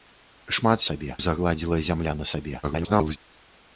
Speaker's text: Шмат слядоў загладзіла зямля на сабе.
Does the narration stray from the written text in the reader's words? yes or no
yes